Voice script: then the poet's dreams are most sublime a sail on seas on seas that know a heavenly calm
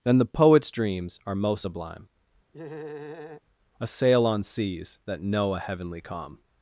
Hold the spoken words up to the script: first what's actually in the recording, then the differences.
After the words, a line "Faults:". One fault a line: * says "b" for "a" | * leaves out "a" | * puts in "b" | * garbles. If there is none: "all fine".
then the poet's dreams are most sublime a sail on seas that know a heavenly calm
Faults:
* leaves out "on seas"